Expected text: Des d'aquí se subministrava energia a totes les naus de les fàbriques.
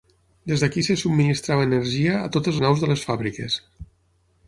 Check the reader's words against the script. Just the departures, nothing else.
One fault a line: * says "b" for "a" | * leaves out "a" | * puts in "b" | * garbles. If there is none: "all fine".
* leaves out "les"